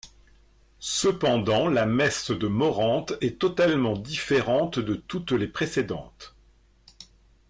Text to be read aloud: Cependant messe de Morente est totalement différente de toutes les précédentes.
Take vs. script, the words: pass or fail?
fail